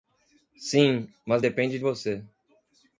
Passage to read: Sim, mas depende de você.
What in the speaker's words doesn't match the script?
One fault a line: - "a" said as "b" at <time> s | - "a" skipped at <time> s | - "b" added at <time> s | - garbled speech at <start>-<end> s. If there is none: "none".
- "de" skipped at 1.8 s